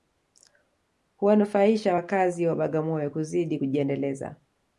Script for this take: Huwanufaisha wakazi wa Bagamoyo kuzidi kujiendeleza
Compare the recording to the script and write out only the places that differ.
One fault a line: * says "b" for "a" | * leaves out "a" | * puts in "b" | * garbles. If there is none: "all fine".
all fine